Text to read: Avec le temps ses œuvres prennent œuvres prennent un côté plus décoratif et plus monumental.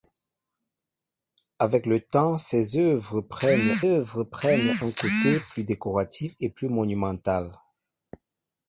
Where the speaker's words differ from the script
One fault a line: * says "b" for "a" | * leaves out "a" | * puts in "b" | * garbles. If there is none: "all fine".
all fine